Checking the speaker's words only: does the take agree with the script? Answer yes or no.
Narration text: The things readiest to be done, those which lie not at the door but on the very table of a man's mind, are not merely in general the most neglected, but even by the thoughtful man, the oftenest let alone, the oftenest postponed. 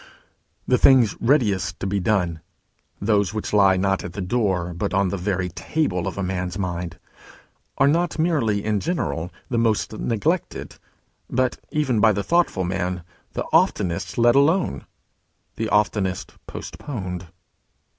yes